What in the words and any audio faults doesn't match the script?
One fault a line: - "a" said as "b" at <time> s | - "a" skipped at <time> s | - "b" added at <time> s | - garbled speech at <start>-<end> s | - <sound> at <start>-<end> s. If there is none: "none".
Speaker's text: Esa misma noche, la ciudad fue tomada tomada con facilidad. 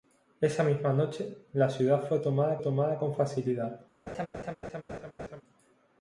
- laugh at 4.1-5.4 s